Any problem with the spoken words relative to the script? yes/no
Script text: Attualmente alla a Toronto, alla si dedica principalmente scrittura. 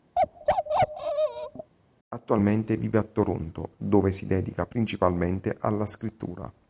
yes